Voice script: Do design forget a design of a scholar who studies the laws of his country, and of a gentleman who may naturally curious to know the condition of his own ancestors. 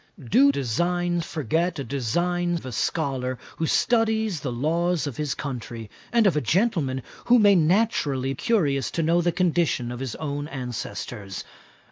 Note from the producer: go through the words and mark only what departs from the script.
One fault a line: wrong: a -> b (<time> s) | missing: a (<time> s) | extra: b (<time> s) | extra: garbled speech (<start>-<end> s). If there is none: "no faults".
no faults